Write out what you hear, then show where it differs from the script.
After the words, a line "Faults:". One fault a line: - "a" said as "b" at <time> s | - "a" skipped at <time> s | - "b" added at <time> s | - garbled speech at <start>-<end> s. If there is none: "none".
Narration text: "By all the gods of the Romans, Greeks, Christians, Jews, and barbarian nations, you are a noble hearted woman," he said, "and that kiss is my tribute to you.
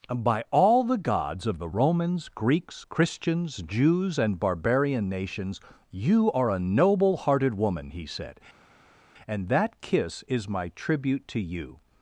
"By all the gods of the Romans, Greeks, Christians, Jews, and barbarian nations, you are a noble hearted woman," he said, "and that kiss is my tribute to you.
Faults:
none